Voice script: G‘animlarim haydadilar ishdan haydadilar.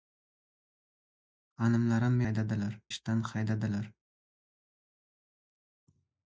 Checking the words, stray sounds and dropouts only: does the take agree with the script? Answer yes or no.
yes